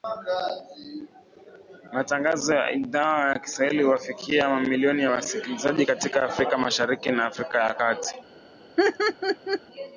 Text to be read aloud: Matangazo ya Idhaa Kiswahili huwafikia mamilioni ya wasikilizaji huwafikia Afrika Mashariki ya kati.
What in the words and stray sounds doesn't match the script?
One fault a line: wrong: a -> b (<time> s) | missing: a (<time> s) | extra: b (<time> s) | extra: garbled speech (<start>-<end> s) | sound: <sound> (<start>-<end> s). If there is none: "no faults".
extra: ya (3.3 s)
wrong: huwafikia -> katika (5.8 s)
extra: na Afrika (7.1 s)
sound: laugh (8.8-9.6 s)